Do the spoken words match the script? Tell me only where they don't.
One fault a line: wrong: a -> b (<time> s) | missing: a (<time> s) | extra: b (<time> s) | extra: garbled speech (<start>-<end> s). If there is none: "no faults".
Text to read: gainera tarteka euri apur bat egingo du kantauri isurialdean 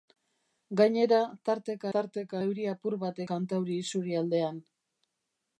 extra: tarteka (2.0 s)
missing: egingo du (3.2 s)